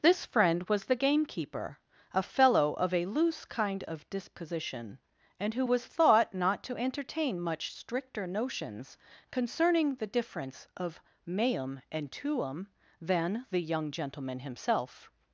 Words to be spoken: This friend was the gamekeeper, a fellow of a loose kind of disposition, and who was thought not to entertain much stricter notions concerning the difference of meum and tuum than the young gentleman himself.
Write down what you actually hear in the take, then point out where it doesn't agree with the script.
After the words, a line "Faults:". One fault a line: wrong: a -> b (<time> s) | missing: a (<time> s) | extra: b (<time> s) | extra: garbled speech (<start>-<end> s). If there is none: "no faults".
This friend was the gamekeeper, a fellow of a loose kind of disposition, and who was thought not to entertain much stricter notions concerning the difference of meum and tuum than the young gentleman himself.
Faults:
no faults